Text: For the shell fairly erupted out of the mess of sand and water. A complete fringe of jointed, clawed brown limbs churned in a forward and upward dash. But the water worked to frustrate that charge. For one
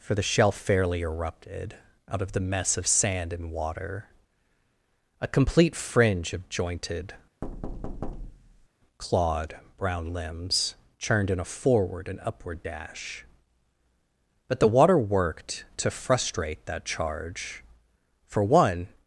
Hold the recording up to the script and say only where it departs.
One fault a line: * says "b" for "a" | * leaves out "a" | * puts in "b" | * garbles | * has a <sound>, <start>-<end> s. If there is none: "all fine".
* has a thud, 7.4-8.7 s